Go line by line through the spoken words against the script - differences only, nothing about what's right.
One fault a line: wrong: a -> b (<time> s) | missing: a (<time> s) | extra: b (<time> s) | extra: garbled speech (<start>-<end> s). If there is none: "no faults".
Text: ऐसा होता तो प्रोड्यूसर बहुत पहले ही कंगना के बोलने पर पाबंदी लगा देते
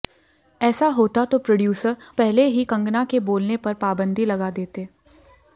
missing: बहुत (1.9 s)